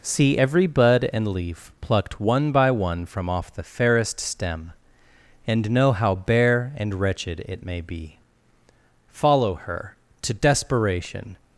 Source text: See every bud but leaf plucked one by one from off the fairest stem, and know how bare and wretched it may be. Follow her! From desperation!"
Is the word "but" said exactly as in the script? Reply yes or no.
no